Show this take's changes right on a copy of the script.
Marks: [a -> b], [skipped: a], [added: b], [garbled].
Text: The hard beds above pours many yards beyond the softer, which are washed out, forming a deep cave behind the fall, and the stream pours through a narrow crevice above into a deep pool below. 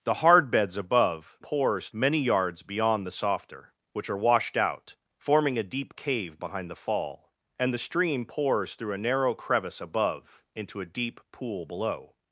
The hard beds above pours many yards beyond the softer, which are washed out, forming a deep cave behind the fall, and the stream pours through a narrow crevice above into a deep pool below.